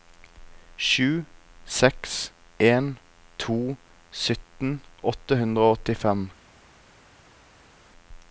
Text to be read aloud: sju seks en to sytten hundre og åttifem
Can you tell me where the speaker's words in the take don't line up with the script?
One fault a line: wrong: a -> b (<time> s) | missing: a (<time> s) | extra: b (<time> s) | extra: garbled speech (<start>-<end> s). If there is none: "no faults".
extra: åtte (5.1 s)